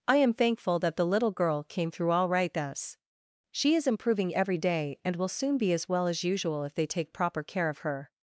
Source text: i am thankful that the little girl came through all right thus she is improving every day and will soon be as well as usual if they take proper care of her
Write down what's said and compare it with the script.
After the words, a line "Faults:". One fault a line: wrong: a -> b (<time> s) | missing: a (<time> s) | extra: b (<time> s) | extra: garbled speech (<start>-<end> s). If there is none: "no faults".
i am thankful that the little girl came through all right thus she is improving every day and will soon be as well as usual if they take proper care of her
Faults:
no faults